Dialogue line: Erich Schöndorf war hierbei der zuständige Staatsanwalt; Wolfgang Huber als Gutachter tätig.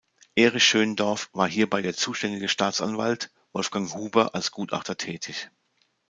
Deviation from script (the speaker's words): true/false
false